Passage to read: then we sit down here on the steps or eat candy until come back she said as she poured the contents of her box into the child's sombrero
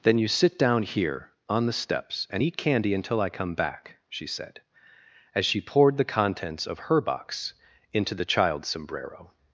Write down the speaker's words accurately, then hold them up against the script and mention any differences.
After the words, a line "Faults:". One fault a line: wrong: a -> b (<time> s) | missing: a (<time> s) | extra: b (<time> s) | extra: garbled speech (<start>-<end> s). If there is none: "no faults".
then you sit down here on the steps and eat candy until i come back she said as she poured the contents of her box into the child's sombrero
Faults:
wrong: we -> you (0.2 s)
wrong: or -> and (2.3 s)
extra: i (3.2 s)